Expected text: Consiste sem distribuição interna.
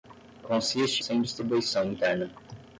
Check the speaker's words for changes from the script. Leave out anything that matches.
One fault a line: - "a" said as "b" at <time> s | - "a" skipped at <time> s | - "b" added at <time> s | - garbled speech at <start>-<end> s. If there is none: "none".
none